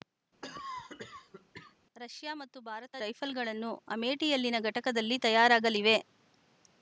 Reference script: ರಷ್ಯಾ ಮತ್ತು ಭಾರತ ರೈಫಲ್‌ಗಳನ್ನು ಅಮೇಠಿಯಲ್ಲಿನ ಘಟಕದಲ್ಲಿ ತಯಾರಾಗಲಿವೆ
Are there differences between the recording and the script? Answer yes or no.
no